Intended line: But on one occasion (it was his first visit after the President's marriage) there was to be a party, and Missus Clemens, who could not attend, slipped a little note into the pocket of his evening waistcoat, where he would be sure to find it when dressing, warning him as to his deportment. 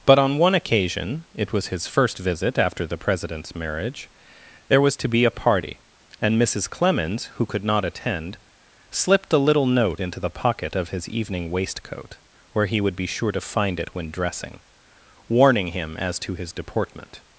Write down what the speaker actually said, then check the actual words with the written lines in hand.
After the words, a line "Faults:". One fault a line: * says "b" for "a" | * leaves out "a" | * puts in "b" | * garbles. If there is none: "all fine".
But on one occasion (it was his first visit after the President's marriage) there was to be a party, and Missus Clemens, who could not attend, slipped a little note into the pocket of his evening waistcoat, where he would be sure to find it when dressing, warning him as to his deportment.
Faults:
all fine